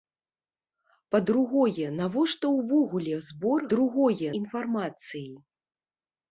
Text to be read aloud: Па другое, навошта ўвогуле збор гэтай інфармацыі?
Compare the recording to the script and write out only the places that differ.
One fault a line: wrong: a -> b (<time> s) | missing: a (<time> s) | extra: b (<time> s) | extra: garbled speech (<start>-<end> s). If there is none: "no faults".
wrong: гэтай -> другое (3.7 s)